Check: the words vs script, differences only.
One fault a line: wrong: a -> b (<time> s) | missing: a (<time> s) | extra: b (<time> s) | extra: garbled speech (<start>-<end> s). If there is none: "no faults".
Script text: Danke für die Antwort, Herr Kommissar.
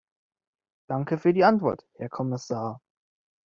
no faults